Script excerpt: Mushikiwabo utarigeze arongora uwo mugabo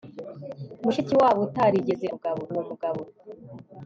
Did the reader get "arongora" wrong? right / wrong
wrong